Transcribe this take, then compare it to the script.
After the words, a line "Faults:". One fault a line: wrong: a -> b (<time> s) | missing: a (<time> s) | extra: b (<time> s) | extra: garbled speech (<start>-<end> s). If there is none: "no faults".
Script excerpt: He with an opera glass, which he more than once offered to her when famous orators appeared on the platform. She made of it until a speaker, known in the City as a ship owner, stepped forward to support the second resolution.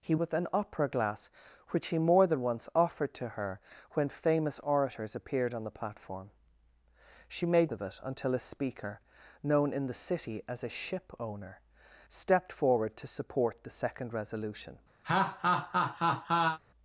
He with an opera glass, which he more than once offered to her when famous orators appeared on the platform. She made of it until a speaker, known in the City as a ship owner, stepped forward to support the second resolution.
Faults:
no faults